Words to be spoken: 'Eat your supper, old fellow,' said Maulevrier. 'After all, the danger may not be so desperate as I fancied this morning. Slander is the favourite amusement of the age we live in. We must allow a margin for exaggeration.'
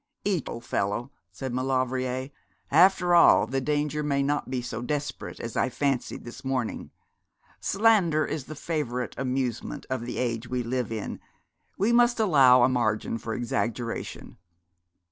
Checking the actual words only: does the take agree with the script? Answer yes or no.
no